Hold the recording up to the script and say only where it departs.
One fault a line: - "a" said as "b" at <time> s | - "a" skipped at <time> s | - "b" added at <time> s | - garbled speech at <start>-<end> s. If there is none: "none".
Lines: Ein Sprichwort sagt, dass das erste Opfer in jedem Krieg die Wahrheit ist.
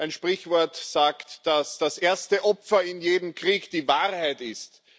none